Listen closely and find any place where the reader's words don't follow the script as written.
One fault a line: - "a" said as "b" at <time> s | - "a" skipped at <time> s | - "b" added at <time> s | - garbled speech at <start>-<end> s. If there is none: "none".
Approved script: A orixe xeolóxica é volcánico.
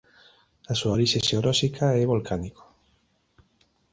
- "súa" added at 0.8 s